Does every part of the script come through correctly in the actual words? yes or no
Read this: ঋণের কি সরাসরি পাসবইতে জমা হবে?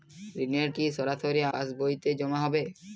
yes